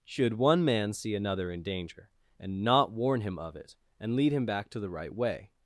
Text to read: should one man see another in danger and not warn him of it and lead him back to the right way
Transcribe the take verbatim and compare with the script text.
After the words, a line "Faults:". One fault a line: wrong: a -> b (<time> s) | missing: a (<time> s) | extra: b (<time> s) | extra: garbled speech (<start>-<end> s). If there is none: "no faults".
should one man see another in danger and not warn him of it and lead him back to the right way
Faults:
no faults